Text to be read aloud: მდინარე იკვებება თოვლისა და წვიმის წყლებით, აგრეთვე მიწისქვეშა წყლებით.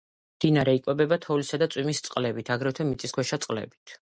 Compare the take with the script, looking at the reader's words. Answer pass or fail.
pass